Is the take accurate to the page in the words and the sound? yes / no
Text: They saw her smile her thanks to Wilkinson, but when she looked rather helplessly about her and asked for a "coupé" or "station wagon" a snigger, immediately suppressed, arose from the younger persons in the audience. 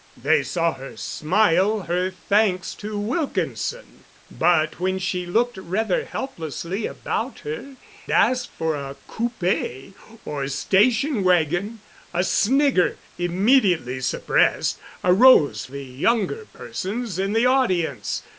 no